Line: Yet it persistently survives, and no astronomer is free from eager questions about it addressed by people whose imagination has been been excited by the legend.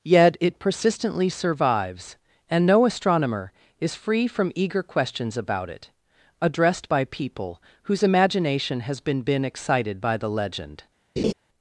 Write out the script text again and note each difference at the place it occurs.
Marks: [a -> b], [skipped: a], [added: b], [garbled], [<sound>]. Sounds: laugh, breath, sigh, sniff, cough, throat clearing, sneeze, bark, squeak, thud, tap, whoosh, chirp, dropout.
Yet it persistently survives, and no astronomer is free from eager questions about it addressed by people whose imagination has been been excited by the legend. [laugh]